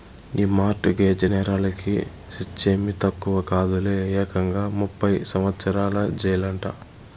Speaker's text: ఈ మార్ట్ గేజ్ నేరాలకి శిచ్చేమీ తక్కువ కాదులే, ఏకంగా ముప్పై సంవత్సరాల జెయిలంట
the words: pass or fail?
pass